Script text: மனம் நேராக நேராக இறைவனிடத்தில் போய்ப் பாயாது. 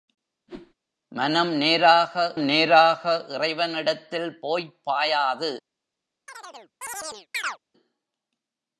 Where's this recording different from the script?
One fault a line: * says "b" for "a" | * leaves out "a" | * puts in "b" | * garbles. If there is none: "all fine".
all fine